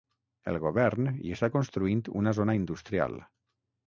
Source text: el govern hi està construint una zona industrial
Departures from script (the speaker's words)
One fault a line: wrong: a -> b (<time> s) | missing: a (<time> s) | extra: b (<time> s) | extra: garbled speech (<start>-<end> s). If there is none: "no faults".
no faults